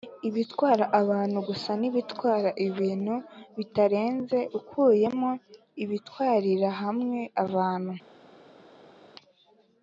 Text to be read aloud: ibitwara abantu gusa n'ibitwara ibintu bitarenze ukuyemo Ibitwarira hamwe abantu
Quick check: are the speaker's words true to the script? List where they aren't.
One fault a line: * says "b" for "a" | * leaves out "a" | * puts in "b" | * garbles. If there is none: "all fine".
all fine